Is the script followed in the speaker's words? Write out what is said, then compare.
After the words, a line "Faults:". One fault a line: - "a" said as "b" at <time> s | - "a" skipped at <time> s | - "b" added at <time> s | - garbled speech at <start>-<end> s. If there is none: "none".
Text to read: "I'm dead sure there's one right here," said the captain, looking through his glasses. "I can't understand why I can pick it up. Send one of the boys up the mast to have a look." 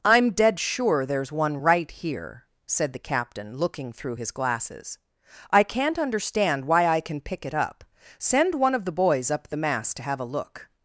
"I'm dead sure there's one right here," said the captain, looking through his glasses. "I can't understand why I can pick it up. Send one of the boys up the mast to have a look."
Faults:
none